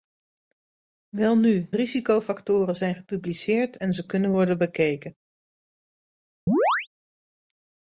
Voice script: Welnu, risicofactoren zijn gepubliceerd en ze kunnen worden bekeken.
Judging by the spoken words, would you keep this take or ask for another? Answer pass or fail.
pass